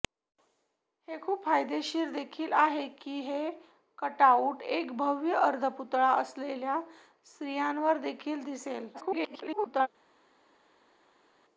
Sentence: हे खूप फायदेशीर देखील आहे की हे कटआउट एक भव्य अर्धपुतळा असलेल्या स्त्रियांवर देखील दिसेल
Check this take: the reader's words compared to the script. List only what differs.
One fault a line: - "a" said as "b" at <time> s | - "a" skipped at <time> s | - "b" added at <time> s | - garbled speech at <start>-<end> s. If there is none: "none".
- garbled speech at 8.9-9.9 s